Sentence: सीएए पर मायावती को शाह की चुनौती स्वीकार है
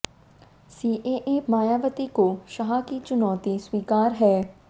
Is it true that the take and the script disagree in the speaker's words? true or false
true